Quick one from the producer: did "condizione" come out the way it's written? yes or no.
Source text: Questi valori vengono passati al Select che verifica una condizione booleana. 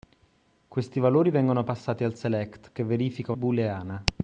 no